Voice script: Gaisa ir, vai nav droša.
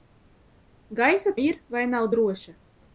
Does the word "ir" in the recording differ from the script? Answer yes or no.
no